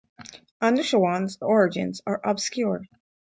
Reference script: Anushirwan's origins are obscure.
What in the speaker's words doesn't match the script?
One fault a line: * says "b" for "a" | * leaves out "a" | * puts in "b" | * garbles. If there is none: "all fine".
all fine